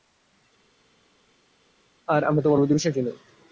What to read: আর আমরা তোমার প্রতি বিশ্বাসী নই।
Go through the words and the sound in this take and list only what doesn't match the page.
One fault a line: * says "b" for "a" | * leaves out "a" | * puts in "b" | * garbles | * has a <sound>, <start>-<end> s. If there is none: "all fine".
all fine